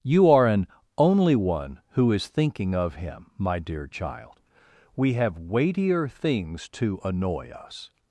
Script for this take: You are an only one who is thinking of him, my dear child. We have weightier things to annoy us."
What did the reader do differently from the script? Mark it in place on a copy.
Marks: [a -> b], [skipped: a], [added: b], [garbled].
You are an only one who is thinking of him, my dear child. We have weightier things to annoy us."